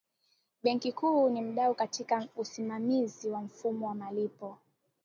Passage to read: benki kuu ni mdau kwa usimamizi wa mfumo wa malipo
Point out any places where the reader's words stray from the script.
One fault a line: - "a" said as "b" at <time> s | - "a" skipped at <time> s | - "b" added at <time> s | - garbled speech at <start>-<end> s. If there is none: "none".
- "kwa" said as "katika" at 1.8 s